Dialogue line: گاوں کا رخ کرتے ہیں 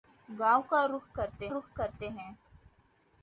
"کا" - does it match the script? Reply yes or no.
yes